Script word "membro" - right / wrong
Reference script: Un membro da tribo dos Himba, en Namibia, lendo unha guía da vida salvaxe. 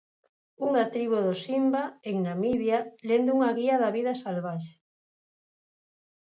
wrong